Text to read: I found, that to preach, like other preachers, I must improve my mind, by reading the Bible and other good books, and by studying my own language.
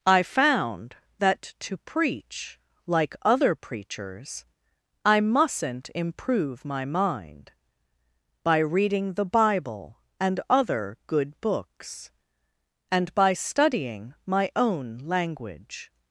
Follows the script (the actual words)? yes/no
no